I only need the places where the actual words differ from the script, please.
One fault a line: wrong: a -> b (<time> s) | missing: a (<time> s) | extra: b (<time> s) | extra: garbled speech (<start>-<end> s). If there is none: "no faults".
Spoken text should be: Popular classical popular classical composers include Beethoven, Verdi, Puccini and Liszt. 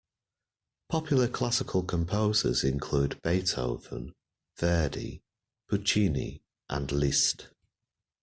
missing: popular classical (1.8 s)